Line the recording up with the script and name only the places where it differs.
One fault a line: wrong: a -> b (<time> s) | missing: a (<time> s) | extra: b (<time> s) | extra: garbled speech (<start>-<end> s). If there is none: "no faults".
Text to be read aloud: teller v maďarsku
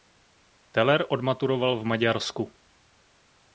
extra: odmaturoval (1.1 s)